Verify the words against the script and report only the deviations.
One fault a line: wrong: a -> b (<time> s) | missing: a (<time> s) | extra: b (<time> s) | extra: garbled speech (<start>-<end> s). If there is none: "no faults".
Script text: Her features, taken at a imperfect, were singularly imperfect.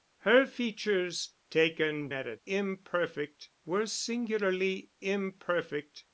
no faults